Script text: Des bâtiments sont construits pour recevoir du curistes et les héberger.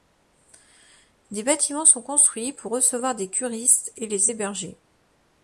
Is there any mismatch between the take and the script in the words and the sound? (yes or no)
yes